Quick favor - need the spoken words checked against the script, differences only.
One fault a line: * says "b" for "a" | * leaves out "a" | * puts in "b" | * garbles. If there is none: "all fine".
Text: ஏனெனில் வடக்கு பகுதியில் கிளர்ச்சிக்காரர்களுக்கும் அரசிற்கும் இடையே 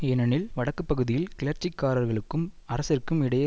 all fine